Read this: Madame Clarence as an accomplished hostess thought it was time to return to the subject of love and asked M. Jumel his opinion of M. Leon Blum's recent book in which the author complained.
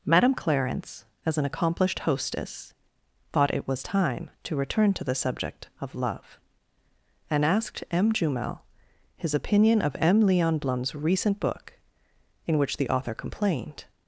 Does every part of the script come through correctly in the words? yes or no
yes